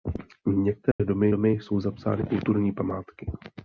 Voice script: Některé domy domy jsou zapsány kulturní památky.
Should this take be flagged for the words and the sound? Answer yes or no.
yes